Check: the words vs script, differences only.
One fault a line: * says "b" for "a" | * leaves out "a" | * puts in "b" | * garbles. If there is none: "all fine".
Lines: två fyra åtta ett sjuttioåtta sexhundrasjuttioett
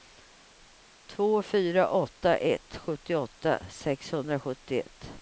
all fine